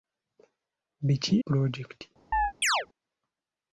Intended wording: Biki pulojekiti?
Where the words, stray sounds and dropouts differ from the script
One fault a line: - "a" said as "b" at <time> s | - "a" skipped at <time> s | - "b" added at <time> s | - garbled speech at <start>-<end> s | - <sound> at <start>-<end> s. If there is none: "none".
- chirp at 2.3-2.9 s